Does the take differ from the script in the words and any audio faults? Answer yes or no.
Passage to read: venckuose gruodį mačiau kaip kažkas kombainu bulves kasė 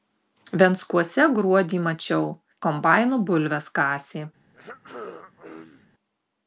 yes